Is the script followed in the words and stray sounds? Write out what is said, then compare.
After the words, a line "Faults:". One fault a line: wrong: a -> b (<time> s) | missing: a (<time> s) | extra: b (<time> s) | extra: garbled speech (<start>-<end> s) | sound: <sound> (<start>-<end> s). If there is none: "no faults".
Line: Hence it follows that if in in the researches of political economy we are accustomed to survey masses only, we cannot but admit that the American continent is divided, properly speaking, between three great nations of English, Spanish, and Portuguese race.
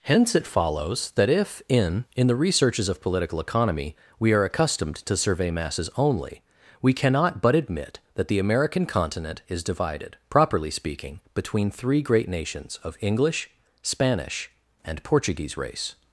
Hence it follows that if in in the researches of political economy we are accustomed to survey masses only, we cannot but admit that the American continent is divided, properly speaking, between three great nations of English, Spanish, and Portuguese race.
Faults:
no faults